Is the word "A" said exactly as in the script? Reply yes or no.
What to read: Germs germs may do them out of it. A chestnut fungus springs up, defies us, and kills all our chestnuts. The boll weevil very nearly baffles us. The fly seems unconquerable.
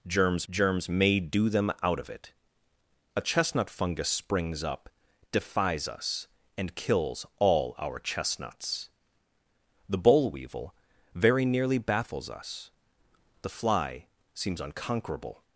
yes